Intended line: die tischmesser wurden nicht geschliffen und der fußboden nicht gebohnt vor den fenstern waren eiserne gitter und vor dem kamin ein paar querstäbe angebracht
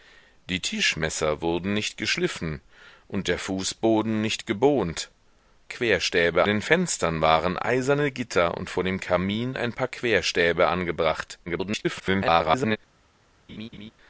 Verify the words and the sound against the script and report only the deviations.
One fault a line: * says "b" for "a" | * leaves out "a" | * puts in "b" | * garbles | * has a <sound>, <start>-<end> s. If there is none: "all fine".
* says "querstäbe" for "vor"
* garbles
* has a laugh, 13.5-13.9 s